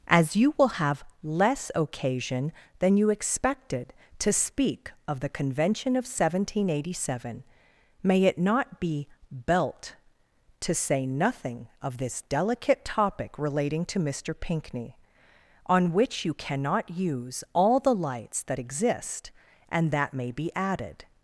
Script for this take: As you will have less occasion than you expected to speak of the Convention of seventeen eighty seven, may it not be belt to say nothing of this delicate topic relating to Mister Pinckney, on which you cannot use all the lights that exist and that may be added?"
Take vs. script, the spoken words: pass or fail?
pass